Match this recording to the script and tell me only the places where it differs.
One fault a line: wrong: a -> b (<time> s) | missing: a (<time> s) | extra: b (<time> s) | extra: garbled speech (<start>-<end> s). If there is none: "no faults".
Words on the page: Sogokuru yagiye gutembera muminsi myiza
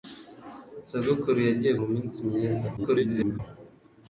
missing: gutembera (1.7 s)
extra: garbled speech (2.8-3.4 s)